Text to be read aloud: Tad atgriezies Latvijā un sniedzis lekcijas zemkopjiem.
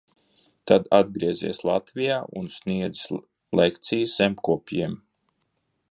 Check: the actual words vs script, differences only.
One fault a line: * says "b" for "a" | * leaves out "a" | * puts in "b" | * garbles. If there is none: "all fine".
all fine